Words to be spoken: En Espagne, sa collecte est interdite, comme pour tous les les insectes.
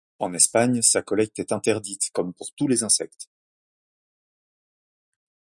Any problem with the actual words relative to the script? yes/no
yes